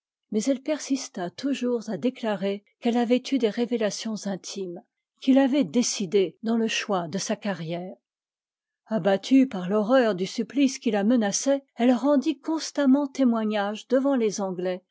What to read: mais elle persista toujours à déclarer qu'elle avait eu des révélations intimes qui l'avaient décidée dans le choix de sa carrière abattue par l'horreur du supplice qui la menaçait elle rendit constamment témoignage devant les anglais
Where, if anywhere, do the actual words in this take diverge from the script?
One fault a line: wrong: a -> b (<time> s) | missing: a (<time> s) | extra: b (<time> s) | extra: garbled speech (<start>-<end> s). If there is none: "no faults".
no faults